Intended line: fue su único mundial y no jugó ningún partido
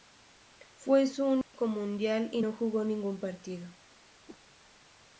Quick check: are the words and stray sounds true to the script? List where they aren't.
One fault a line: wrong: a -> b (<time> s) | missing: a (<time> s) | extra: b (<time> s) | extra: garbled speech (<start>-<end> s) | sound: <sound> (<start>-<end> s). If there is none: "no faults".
sound: dropout (1.4-1.5 s)
sound: whoosh (4.3-4.4 s)